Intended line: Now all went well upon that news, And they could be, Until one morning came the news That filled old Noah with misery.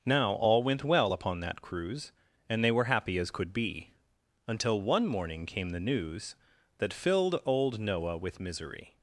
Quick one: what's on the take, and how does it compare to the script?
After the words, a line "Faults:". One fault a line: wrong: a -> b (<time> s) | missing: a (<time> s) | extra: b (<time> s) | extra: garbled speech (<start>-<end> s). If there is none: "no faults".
Now all went well upon that cruise, And they were happy as could be, Until one morning came the news That filled old Noah with misery.
Faults:
wrong: news -> cruise (1.6 s)
extra: were happy as (2.7 s)